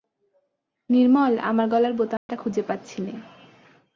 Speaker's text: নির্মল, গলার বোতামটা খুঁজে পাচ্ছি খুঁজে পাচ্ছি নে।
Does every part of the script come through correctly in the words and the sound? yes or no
no